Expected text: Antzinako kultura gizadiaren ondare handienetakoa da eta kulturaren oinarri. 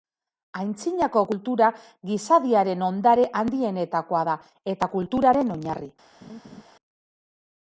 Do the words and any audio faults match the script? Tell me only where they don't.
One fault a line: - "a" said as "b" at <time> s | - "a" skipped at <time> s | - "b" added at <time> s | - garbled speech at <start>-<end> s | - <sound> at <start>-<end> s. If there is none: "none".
- laugh at 6.2-6.6 s